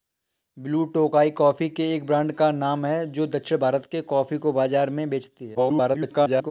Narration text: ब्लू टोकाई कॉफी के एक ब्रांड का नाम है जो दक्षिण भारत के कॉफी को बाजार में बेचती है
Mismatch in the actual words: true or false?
true